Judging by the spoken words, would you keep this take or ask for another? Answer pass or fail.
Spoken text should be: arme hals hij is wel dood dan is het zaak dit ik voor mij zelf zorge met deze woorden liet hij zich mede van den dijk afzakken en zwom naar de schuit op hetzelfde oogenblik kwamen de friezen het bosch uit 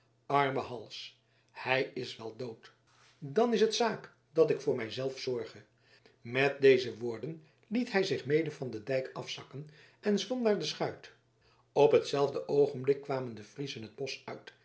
fail